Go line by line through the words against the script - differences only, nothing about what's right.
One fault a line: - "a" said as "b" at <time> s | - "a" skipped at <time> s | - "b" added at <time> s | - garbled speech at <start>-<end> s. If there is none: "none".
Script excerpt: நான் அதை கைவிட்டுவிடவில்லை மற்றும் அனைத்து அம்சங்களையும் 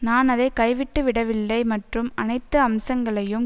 none